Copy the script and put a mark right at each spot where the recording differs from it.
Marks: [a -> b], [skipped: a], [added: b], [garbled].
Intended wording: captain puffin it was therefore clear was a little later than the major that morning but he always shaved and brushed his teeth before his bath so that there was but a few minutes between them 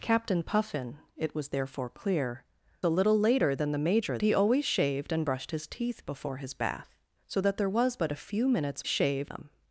captain puffin it was therefore clear [skipped: was] a little later than the major [skipped: that morning but] he always shaved and brushed his teeth before his bath so that there was but a few minutes [between -> shaved] them